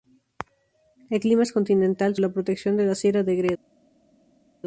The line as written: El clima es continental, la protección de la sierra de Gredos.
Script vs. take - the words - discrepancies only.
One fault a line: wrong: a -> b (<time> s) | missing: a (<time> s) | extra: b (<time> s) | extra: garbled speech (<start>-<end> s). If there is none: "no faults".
no faults